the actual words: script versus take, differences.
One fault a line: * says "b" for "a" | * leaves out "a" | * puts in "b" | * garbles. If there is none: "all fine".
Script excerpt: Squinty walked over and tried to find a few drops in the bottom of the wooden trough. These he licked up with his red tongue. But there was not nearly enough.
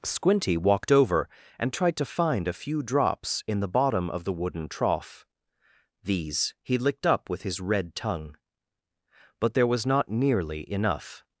all fine